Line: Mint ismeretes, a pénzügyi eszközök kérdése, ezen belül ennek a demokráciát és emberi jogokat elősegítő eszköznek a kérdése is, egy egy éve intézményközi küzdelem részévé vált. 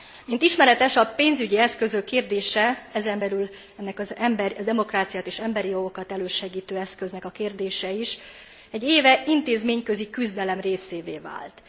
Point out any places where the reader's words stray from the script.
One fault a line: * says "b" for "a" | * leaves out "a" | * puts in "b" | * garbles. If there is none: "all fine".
* leaves out "egy"